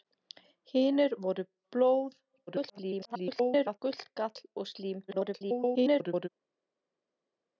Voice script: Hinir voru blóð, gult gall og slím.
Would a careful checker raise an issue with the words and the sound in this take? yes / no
yes